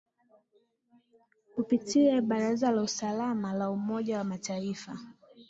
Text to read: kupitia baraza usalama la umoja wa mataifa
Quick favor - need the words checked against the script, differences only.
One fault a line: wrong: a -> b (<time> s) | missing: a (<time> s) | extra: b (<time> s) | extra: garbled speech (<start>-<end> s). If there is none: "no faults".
extra: la (2.7 s)